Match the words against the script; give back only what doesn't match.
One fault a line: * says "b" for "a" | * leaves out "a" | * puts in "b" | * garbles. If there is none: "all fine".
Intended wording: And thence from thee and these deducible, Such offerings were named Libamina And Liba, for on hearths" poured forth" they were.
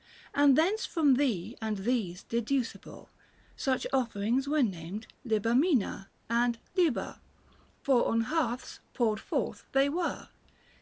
all fine